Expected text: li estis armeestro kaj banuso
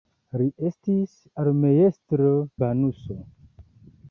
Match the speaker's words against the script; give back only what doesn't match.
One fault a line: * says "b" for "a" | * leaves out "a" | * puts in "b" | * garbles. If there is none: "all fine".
* leaves out "kaj"